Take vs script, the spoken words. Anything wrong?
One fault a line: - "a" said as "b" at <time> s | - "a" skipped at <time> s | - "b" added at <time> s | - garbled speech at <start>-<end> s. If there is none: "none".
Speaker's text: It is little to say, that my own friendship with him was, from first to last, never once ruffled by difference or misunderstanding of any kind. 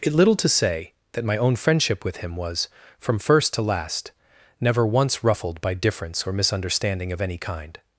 - "is" skipped at 0.1 s